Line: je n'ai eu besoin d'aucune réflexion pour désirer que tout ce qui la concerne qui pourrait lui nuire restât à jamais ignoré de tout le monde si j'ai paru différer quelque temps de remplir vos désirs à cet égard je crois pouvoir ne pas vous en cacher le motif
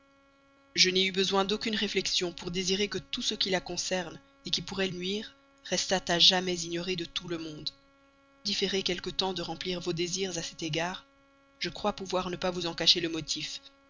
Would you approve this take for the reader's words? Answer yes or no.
no